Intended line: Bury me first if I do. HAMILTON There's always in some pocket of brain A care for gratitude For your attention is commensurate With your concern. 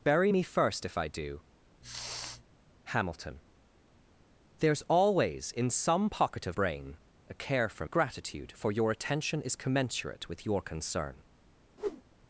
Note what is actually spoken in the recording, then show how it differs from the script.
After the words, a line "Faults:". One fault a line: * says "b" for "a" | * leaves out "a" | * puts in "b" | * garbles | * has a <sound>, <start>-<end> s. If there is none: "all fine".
Bury me first if I do. HAMILTON There's always in some pocket of brain A care for gratitude For your attention is commensurate With your concern.
Faults:
* has a sniff, 1.8-2.4 s
* has a whoosh, 11.8-12.0 s